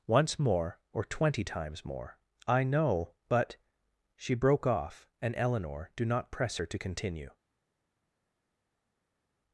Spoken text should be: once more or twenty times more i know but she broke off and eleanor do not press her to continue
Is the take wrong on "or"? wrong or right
right